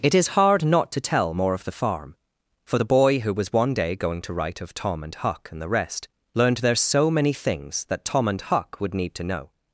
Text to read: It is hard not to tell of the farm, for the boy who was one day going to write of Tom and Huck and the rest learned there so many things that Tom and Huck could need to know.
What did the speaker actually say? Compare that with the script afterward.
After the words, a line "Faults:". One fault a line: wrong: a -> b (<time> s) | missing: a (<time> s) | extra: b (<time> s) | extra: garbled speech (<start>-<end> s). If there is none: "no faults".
It is hard not to tell more of the farm, for the boy who was one day going to write of Tom and Huck and the rest learned there so many things that Tom and Huck would need to know.
Faults:
extra: more (1.3 s)
wrong: could -> would (8.8 s)